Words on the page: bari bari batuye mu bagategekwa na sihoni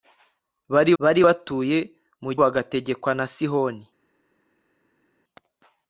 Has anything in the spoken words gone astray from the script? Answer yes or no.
no